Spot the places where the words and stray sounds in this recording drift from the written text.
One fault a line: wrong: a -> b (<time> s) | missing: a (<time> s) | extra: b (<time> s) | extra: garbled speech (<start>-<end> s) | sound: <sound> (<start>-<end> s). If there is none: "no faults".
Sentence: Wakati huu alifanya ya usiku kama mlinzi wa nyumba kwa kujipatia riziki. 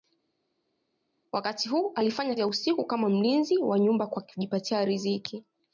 no faults